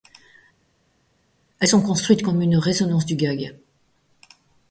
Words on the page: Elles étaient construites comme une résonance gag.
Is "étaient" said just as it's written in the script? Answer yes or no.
no